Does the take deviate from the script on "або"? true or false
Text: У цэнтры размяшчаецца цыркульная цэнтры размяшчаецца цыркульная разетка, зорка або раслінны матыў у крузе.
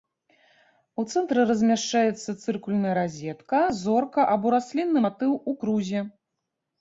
false